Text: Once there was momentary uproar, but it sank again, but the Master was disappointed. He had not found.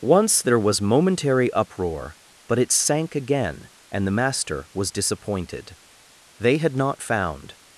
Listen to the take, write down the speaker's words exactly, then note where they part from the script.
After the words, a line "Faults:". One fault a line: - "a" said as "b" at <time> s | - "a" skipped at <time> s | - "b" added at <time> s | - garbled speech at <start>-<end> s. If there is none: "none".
Once there was momentary uproar, but it sank again, and the Master was disappointed. They had not found.
Faults:
- "but" said as "and" at 3.9 s
- "He" said as "They" at 6.4 s